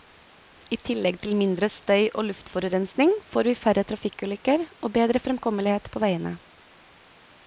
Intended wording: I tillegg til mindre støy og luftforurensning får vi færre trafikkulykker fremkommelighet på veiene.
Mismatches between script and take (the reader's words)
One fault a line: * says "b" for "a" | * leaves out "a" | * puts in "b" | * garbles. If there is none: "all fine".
* puts in "og bedre"